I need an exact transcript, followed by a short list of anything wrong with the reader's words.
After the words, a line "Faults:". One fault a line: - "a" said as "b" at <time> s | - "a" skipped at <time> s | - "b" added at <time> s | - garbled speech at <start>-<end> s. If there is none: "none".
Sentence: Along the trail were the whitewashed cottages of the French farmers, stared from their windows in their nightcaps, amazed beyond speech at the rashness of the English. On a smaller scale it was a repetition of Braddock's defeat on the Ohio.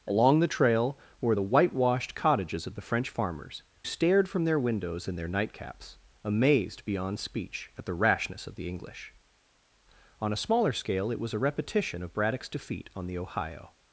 Along the trail were the whitewashed cottages of the French farmers, stared from their windows in their nightcaps, amazed beyond speech at the rashness of the English. On a smaller scale it was a repetition of Braddock's defeat on the Ohio.
Faults:
none